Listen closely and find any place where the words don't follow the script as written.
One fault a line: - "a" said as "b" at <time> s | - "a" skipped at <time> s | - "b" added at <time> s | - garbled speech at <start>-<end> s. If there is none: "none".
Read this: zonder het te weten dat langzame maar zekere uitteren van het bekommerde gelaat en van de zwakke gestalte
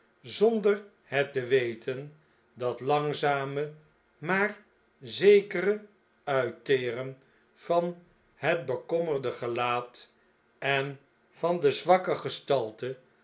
none